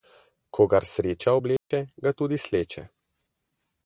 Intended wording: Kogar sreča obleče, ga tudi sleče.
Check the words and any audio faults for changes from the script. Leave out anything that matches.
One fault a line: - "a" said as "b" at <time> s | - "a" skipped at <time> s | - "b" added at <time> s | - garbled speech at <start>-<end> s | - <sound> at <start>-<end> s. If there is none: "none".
- dropout at 1.6-1.7 s